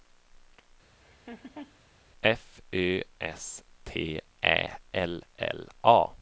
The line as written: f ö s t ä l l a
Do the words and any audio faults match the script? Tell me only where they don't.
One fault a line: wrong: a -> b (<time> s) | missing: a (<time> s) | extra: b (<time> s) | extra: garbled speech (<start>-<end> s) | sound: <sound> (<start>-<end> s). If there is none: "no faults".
sound: laugh (1.0-1.8 s)